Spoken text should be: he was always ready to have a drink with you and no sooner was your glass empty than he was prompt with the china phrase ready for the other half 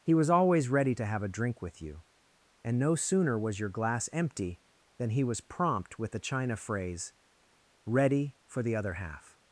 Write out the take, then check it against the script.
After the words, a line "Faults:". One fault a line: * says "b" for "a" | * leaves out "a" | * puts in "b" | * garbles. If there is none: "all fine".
he was always ready to have a drink with you and no sooner was your glass empty than he was prompt with the china phrase ready for the other half
Faults:
all fine